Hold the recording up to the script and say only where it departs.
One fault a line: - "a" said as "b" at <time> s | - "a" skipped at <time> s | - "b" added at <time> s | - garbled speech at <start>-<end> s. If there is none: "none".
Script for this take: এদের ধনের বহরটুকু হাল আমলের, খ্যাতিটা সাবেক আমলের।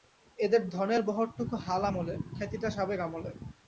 none